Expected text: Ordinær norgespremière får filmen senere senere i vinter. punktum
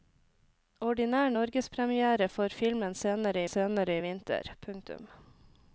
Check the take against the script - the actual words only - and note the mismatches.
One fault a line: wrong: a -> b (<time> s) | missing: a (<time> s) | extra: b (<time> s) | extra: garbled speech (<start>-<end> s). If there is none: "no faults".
no faults